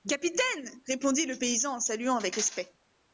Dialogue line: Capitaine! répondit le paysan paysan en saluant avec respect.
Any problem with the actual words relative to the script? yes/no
yes